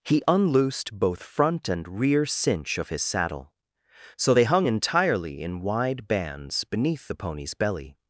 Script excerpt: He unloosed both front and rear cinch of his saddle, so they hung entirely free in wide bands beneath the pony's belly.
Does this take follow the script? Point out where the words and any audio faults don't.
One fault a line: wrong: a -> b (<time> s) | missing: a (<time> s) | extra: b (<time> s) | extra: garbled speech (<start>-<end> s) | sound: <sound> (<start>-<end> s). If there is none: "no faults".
missing: free (5.4 s)